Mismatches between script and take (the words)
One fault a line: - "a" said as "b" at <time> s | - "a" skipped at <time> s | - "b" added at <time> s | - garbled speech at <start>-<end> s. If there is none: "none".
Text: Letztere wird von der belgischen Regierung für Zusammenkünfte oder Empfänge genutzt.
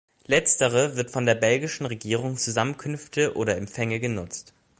- "für" skipped at 2.4 s